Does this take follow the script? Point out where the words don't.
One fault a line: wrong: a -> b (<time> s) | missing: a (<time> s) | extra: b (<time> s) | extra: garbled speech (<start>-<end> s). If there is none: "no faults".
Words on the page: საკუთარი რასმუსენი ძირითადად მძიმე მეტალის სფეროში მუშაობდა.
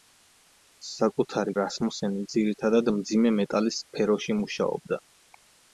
no faults